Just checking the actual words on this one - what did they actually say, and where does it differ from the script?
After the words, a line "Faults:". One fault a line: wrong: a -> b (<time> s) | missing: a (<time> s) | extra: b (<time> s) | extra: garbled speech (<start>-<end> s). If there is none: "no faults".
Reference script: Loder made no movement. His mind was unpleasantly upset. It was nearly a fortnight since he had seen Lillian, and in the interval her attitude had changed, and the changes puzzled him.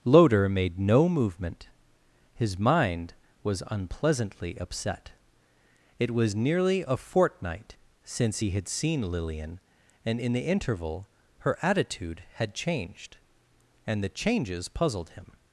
Loder made no movement. His mind was unpleasantly upset. It was nearly a fortnight since he had seen Lillian, and in the interval her attitude had changed, and the changes puzzled him.
Faults:
no faults